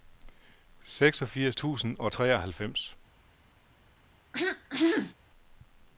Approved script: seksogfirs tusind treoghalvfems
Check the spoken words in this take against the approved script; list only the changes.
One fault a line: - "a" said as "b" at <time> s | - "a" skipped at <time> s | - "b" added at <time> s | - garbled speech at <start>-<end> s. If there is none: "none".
- "og" added at 2.0 s